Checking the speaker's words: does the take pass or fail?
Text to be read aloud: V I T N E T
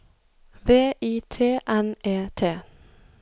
pass